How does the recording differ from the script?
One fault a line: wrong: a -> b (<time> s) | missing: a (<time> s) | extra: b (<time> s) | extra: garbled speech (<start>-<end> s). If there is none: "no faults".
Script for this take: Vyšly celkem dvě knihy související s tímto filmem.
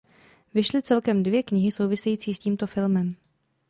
no faults